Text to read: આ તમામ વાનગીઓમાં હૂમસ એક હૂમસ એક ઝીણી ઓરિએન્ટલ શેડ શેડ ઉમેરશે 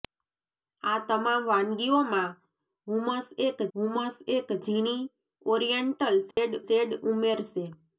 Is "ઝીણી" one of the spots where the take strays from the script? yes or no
no